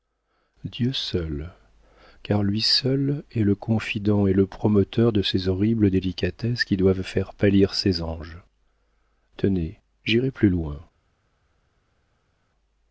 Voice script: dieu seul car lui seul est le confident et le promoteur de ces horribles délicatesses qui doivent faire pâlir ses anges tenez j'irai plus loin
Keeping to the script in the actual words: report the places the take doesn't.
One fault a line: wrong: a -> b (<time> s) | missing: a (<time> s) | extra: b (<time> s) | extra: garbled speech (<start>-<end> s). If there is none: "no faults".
no faults